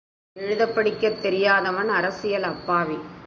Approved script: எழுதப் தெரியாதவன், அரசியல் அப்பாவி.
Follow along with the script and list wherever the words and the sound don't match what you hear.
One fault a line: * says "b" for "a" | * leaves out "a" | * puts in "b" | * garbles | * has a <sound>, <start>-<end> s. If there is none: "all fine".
* puts in "படிக்கத்"